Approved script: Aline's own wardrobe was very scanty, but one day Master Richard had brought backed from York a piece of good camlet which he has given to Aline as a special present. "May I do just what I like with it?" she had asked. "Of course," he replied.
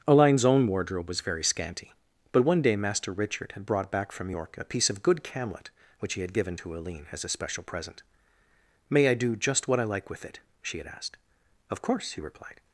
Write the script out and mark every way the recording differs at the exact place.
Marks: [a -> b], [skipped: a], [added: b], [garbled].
Aline's own wardrobe was very scanty, but one day Master Richard had brought [backed -> back] from York a piece of good camlet which he [has -> had] given to Aline as a special present. "May I do just what I like with it?" she had asked. "Of course," he replied.